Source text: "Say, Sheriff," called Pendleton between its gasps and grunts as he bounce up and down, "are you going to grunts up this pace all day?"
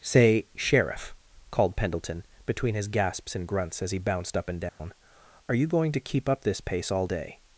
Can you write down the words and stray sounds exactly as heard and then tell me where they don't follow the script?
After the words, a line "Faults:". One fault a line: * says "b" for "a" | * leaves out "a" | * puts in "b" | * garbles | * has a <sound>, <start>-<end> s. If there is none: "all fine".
"Say, Sheriff," called Pendleton between his gasps and grunts as he bounced up and down, "are you going to keep up this pace all day?"
Faults:
* says "his" for "its"
* says "bounced" for "bounce"
* has a dropout, 4.7-4.8 s
* says "keep" for "grunts"